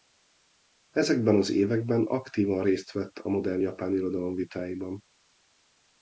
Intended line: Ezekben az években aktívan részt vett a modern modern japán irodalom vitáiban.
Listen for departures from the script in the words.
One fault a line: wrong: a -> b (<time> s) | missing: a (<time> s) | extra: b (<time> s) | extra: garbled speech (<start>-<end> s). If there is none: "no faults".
missing: modern (3.6 s)